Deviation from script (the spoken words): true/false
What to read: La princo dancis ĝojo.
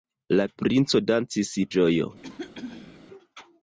false